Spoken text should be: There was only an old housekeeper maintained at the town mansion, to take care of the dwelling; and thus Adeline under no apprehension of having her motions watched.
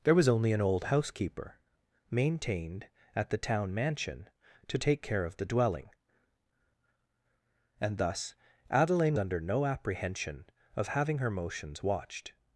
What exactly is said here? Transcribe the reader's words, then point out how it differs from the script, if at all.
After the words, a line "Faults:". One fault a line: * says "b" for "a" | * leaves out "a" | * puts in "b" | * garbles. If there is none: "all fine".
There was only an old housekeeper maintained at the town mansion, to take care of the dwelling; and thus Adeline under no apprehension of having her motions watched.
Faults:
all fine